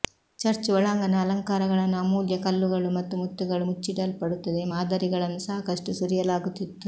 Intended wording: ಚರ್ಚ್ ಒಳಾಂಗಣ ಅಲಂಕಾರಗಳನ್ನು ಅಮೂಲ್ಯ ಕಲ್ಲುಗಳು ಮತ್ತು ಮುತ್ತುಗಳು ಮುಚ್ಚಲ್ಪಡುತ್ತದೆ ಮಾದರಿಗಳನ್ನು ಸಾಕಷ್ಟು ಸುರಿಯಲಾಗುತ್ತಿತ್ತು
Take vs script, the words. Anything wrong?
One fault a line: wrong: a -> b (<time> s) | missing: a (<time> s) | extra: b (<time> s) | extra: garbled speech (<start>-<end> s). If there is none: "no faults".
no faults